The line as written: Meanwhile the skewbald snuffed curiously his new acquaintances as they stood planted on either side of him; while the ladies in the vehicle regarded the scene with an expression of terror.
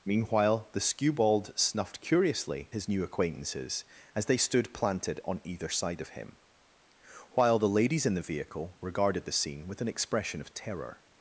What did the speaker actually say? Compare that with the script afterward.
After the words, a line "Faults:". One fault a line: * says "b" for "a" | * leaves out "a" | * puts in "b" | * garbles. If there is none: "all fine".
Meanwhile the skewbald snuffed curiously his new acquaintances as they stood planted on either side of him; while the ladies in the vehicle regarded the scene with an expression of terror.
Faults:
all fine